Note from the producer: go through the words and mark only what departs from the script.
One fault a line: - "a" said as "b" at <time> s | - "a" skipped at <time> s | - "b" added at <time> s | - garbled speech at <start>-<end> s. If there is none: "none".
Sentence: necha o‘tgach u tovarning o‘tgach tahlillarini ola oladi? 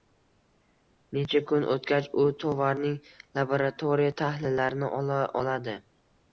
- "kun" added at 1.5 s
- "o‘tgach" said as "laboratoriya" at 3.4 s